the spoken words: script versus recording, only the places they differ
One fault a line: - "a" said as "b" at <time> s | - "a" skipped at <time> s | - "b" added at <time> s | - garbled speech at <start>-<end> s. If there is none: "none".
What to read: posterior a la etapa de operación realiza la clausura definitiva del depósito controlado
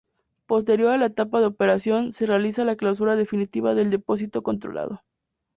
- "se" added at 2.1 s